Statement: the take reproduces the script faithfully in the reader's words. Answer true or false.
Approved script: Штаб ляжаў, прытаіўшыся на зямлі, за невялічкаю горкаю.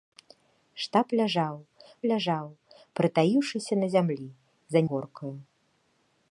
false